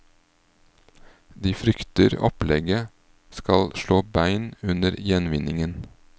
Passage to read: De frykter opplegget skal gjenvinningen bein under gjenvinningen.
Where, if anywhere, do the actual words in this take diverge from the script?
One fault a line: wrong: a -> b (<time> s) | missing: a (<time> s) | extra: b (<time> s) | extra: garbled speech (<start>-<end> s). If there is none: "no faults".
wrong: gjenvinningen -> slå (3.8 s)